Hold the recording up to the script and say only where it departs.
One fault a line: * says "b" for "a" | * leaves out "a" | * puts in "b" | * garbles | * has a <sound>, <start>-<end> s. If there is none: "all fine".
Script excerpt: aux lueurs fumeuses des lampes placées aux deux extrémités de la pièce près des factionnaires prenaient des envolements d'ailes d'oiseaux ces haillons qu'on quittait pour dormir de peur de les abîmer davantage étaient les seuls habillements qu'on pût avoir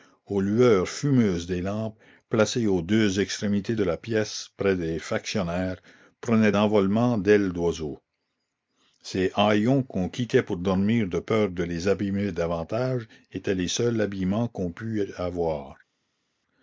* leaves out "des"